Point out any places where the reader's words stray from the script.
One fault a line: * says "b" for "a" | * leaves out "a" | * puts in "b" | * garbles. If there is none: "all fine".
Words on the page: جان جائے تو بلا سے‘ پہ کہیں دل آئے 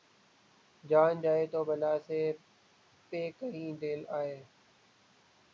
all fine